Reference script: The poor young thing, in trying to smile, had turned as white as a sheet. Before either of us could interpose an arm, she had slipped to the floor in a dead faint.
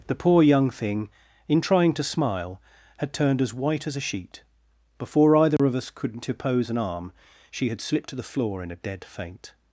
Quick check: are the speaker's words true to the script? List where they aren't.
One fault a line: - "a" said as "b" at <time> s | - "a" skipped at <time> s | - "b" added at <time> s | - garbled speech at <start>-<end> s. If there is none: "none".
none